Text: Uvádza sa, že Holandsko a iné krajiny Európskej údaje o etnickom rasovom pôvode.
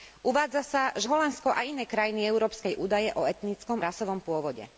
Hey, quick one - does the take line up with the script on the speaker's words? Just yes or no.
yes